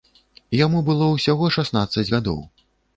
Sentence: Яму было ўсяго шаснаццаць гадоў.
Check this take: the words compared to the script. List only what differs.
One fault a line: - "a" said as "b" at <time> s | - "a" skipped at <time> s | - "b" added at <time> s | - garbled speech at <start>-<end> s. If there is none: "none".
none